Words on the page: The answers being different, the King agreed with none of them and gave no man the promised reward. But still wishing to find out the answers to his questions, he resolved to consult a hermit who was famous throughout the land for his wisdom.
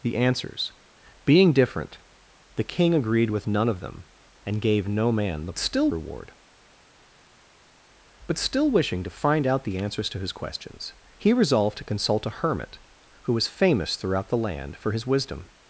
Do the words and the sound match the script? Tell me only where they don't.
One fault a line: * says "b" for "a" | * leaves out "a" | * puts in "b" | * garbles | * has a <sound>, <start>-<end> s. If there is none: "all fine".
* says "still" for "promised"